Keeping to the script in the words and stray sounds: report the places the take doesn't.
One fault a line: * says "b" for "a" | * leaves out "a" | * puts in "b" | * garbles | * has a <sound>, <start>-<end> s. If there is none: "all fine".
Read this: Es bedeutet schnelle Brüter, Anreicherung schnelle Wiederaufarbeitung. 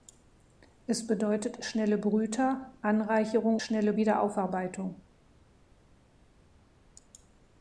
all fine